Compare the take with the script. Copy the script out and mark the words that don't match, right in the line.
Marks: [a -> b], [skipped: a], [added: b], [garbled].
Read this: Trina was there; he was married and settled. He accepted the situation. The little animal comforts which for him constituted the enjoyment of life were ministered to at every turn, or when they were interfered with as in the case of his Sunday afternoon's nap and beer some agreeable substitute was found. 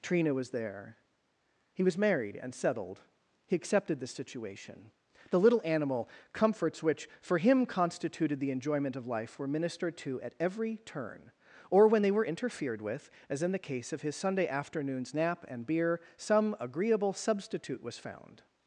Trina was there; he was married and settled. He accepted the situation. The little animal comforts which for him constituted the enjoyment of life were ministered to at every turn, or when they were interfered with as in the case of his Sunday afternoon's nap and beer some agreeable substitute was found.